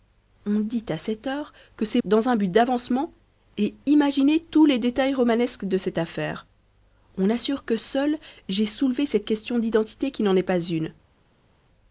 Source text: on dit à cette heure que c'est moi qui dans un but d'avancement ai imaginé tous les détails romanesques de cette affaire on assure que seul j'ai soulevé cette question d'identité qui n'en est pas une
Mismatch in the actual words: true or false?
true